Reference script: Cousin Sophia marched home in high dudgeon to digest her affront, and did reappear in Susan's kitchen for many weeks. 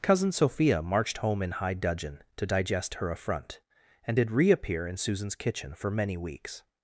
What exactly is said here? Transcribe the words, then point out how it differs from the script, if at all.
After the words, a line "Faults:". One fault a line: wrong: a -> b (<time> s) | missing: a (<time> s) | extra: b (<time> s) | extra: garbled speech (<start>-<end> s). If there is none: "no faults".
Cousin Sophia marched home in high dudgeon to digest her affront, and did reappear in Susan's kitchen for many weeks.
Faults:
no faults